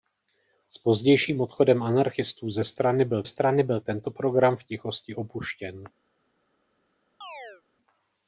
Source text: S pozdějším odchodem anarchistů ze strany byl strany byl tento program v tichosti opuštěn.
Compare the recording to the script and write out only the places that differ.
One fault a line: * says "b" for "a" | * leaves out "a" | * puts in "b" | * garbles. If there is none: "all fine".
all fine